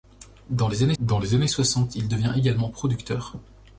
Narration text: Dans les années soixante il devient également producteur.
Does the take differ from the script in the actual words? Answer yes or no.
yes